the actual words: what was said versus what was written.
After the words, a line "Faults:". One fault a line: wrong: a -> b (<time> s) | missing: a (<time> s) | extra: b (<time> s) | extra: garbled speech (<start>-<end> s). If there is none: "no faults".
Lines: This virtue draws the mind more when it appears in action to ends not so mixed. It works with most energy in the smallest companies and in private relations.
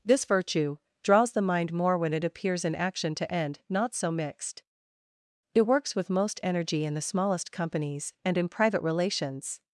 This virtue draws the mind more when it appears in action to end not so mixed. It works with most energy in the smallest companies and in private relations.
Faults:
wrong: ends -> end (3.3 s)